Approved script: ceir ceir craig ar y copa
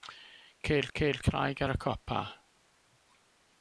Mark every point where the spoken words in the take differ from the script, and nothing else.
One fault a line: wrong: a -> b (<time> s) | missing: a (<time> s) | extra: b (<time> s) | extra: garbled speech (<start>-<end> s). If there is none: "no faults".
no faults